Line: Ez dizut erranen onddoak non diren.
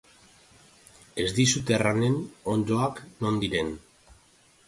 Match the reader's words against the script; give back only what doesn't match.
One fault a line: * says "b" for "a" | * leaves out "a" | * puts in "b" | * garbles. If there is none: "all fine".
all fine